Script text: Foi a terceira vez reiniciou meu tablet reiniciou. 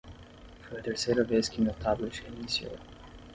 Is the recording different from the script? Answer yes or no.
yes